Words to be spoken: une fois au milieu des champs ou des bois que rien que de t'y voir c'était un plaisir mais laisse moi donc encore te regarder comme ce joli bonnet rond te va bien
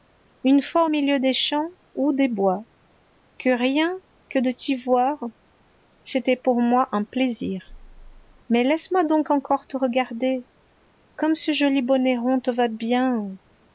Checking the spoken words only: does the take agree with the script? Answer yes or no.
no